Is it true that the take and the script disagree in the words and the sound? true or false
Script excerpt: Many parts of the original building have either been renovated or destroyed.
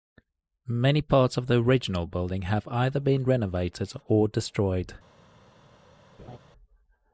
true